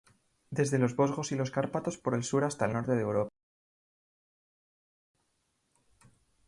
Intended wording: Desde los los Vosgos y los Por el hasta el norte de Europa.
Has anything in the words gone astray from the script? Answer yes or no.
yes